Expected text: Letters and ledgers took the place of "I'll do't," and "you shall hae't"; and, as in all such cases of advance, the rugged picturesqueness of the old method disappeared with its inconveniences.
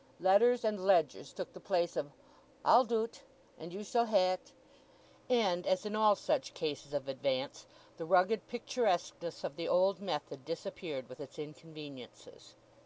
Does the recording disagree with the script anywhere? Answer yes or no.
no